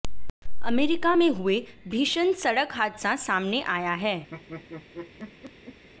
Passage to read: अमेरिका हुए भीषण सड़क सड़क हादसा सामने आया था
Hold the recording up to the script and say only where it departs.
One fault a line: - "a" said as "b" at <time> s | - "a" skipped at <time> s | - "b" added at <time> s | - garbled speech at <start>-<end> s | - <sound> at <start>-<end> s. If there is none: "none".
- "में" added at 1.1 s
- "सड़क" skipped at 2.7 s
- "था" said as "है" at 3.9 s
- laugh at 4.3-5.8 s